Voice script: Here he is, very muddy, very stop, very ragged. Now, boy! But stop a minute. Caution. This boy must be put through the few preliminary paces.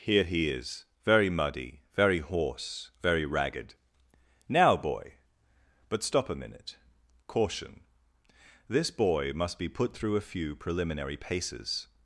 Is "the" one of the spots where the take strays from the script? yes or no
yes